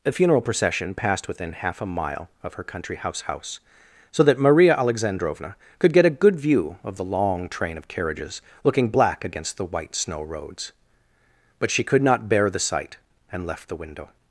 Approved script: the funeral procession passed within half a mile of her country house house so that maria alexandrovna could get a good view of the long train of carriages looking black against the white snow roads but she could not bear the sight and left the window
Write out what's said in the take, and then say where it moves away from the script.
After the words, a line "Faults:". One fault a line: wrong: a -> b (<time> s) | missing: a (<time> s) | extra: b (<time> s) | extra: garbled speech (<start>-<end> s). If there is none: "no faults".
the funeral procession passed within half a mile of her country house house so that maria alexandrovna could get a good view of the long train of carriages looking black against the white snow roads but she could not bear the sight and left the window
Faults:
no faults